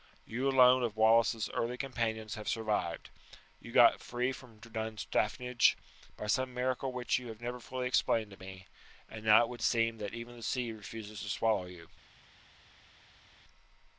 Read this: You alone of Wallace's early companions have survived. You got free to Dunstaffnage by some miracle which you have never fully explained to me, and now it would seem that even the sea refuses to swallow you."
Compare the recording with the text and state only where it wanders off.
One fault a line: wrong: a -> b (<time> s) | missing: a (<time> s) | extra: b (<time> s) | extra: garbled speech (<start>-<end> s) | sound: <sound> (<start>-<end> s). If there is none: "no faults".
wrong: to -> from (4.3 s)